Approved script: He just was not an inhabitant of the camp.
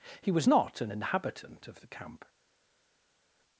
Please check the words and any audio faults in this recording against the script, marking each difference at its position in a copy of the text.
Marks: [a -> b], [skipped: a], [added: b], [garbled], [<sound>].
He [skipped: just] was not an inhabitant of the camp.